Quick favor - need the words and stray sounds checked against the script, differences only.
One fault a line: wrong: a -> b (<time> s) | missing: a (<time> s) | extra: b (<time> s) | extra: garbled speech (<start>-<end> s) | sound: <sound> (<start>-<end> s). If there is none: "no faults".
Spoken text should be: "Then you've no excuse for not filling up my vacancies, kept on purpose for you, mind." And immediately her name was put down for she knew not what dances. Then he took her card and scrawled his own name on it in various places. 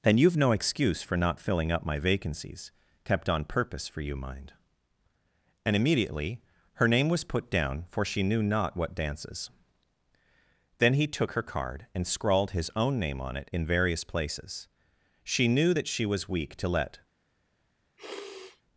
extra: She knew that she was weak to let (15.2 s)
sound: sniff (18.0-18.6 s)